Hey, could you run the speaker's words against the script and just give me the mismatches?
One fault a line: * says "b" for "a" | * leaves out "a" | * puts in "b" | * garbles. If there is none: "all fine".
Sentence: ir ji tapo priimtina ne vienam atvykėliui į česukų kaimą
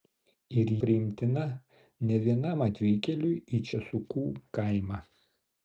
* leaves out "ji tapo"